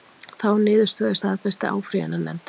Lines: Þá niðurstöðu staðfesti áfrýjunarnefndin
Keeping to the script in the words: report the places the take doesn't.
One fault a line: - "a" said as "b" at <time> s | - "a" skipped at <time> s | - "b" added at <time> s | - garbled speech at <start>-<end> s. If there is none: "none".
none